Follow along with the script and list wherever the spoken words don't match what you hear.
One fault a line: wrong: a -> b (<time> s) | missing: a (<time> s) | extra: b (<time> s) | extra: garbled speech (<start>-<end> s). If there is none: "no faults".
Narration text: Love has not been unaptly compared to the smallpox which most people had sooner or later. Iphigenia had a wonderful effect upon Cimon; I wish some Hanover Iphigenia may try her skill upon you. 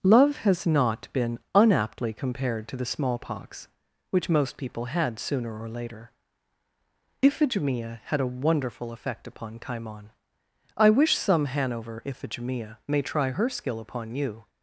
no faults